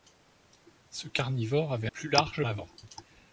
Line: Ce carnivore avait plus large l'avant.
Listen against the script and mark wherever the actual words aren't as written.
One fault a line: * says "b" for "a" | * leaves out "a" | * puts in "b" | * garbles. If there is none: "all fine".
all fine